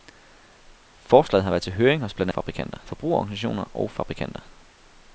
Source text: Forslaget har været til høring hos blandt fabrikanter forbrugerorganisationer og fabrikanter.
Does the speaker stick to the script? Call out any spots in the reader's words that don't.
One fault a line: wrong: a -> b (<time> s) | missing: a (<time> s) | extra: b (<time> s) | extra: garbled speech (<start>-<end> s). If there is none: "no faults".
no faults